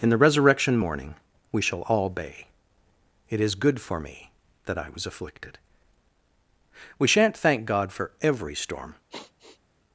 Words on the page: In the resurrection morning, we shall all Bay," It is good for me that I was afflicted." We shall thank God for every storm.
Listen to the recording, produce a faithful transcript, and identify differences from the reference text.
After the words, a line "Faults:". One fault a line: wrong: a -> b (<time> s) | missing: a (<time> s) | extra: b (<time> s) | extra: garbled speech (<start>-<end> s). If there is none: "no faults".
In the resurrection morning, we shall all Bay," It is good for me that I was afflicted." We shan't thank God for every storm.
Faults:
wrong: shall -> shan't (7.1 s)